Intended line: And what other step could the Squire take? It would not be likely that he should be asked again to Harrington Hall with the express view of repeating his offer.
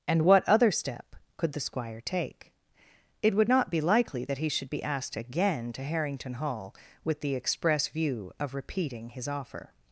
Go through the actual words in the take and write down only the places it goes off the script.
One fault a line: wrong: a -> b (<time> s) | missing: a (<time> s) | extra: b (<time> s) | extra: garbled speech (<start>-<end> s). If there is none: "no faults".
no faults